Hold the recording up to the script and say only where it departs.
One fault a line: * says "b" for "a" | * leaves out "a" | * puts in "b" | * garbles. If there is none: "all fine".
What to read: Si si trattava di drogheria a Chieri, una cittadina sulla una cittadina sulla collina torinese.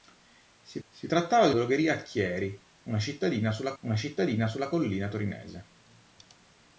all fine